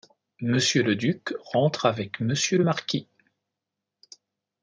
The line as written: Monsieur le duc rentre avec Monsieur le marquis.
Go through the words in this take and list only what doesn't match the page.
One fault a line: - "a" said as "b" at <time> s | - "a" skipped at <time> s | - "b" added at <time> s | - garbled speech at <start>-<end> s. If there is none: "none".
none